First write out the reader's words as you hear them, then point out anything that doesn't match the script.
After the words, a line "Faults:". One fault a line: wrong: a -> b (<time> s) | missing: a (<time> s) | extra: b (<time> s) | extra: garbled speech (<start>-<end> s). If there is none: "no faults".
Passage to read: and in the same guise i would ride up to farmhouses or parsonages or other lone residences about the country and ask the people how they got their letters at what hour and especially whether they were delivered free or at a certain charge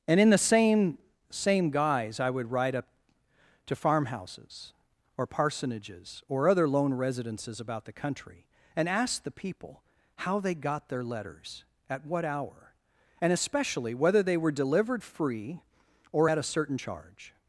and in the same same guise i would ride up to farmhouses or parsonages or other lone residences about the country and ask the people how they got their letters at what hour and especially whether they were delivered free or at a certain charge
Faults:
extra: same (1.3 s)